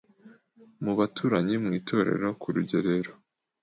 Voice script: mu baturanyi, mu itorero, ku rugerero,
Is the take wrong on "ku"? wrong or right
right